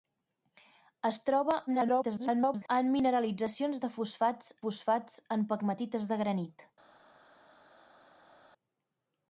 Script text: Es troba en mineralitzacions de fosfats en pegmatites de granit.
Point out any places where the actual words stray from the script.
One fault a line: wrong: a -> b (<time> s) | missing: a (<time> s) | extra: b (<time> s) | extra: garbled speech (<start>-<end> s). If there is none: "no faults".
extra: garbled speech (1.7-2.7 s)
extra: fosfats (4.6 s)